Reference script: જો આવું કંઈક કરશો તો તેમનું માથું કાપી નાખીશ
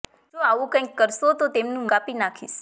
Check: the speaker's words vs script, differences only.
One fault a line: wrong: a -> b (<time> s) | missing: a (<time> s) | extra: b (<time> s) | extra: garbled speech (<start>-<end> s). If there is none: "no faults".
missing: માથું (1.9 s)